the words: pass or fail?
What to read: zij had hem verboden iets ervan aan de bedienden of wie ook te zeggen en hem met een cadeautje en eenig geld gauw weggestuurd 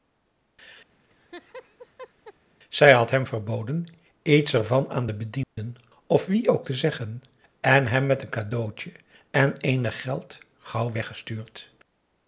pass